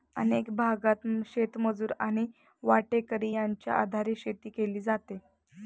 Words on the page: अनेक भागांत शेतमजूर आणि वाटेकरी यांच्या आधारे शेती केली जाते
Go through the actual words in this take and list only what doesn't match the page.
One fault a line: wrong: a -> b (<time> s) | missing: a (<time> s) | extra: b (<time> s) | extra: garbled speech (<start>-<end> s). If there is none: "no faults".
no faults